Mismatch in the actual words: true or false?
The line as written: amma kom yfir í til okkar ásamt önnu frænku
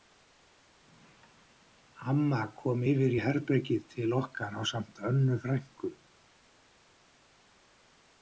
true